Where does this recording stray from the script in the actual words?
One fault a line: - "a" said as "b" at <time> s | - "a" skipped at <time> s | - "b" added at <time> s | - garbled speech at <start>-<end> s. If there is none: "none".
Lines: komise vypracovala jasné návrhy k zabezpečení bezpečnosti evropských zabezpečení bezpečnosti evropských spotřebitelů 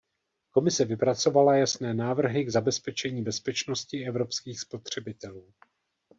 - "zabezpečení bezpečnosti evropských" skipped at 4.6 s